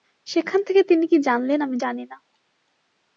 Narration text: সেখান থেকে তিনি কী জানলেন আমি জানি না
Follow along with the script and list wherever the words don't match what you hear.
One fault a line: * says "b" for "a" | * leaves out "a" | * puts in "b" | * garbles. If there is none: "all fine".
all fine